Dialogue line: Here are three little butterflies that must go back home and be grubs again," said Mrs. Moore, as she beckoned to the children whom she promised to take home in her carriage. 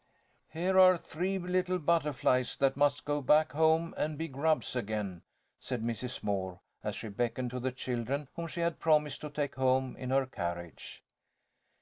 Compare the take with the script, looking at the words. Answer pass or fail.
fail